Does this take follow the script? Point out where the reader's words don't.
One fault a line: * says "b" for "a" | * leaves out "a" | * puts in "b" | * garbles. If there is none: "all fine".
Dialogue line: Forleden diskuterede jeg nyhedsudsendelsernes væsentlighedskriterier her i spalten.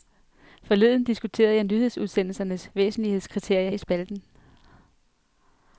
* leaves out "her"